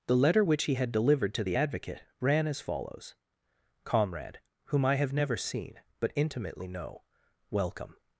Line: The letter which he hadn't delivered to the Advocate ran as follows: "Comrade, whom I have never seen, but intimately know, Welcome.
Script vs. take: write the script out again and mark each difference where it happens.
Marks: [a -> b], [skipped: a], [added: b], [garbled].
The letter which he [hadn't -> had] delivered to the Advocate ran as follows: "Comrade, whom I have never seen, but intimately know, Welcome.